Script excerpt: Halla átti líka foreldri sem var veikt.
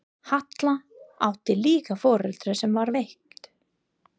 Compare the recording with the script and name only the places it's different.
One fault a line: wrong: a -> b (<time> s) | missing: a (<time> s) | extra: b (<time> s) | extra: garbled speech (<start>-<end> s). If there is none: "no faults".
no faults